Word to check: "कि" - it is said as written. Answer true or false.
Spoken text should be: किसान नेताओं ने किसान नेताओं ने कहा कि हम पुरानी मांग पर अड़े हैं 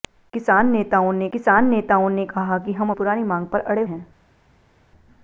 true